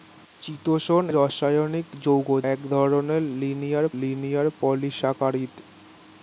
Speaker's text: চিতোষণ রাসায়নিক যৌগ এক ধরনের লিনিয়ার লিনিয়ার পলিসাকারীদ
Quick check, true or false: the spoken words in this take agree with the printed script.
true